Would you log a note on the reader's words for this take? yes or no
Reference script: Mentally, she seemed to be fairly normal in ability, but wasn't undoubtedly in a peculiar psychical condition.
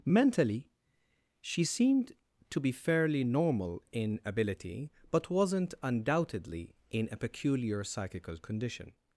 no